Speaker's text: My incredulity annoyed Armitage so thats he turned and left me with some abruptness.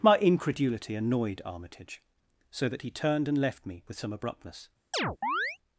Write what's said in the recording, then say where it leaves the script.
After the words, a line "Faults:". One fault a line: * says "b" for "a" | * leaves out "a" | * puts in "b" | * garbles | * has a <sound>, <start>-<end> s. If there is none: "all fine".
My incredulity annoyed Armitage so that he turned and left me with some abruptness.
Faults:
* says "that" for "thats"
* has a chirp, 4.9-5.6 s